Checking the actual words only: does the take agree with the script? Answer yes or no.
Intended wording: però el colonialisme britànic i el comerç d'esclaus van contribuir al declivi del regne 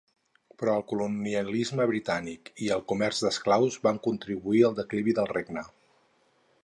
yes